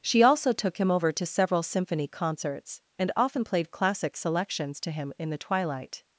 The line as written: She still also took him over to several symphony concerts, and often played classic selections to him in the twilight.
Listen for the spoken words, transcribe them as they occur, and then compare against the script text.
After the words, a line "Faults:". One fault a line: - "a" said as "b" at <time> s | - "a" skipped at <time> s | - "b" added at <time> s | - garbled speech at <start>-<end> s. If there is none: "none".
She also took him over to several symphony concerts, and often played classic selections to him in the twilight.
Faults:
- "still" skipped at 0.2 s